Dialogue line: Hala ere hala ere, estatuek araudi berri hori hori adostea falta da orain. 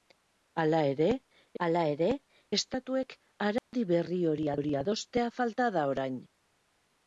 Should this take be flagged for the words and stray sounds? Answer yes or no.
yes